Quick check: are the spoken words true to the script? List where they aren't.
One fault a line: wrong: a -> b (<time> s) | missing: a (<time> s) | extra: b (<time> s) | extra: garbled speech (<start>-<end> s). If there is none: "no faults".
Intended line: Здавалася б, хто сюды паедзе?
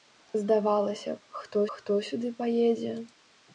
extra: хто (1.7 s)